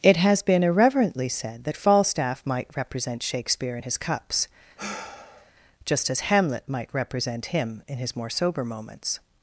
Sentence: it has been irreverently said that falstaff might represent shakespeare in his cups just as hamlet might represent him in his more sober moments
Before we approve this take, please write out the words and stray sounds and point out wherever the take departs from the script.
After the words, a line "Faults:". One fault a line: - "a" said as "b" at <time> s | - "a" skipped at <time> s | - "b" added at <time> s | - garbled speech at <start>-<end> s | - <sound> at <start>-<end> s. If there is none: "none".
it has been irreverently said that falstaff might represent shakespeare in his cups just as hamlet might represent him in his more sober moments
Faults:
- sigh at 4.8-5.5 s